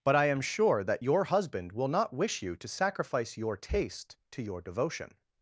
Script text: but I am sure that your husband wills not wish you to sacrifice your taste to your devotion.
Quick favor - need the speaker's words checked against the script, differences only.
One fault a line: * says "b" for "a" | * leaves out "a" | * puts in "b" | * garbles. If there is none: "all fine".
* says "will" for "wills"